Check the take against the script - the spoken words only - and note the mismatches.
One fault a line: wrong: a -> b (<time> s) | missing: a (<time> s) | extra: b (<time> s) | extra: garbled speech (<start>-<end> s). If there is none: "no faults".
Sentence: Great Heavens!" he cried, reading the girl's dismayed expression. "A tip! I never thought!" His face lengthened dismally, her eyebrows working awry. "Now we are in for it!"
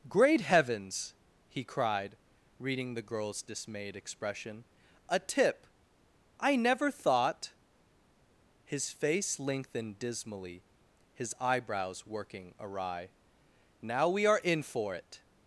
wrong: her -> his (11.1 s)